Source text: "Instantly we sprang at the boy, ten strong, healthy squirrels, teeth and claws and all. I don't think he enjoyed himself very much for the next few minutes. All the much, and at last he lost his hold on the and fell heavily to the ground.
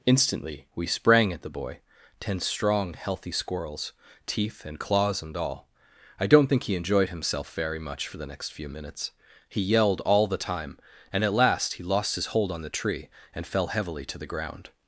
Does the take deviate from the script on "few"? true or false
false